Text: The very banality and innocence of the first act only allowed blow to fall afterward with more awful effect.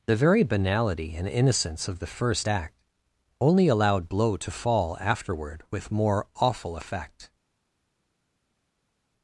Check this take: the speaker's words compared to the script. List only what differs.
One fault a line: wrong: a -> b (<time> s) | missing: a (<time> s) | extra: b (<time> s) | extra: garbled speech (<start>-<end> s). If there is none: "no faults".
no faults